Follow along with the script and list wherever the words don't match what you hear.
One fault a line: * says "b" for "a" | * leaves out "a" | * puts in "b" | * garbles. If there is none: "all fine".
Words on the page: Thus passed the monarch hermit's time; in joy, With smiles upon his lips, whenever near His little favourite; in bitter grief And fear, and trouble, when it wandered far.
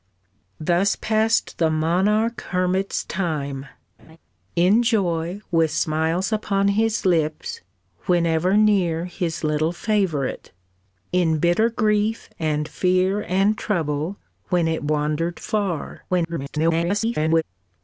* garbles